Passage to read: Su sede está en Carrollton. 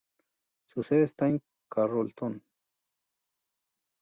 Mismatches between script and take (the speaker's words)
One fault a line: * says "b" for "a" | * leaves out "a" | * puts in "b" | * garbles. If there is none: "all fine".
all fine